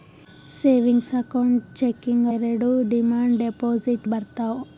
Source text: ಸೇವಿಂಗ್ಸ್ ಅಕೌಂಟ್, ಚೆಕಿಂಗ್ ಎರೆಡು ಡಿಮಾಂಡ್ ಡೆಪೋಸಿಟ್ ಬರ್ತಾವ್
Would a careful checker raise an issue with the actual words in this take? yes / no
no